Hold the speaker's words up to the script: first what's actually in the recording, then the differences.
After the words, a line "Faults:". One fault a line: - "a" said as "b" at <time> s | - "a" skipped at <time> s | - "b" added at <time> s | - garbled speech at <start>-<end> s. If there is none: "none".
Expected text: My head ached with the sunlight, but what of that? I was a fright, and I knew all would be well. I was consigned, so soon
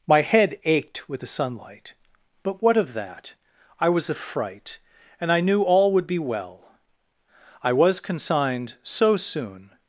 My head ached with the sunlight, but what of that? I was a fright, and I knew all would be well. I was consigned, so soon
Faults:
none